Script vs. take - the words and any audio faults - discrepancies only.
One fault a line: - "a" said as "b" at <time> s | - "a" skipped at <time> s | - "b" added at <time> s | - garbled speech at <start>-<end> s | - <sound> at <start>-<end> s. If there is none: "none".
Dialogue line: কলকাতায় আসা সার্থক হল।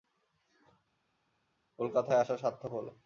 none